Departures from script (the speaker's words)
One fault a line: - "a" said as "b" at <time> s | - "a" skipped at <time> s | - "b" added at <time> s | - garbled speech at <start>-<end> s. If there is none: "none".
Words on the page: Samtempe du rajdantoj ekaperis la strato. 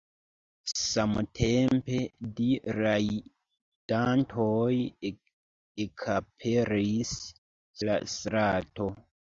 none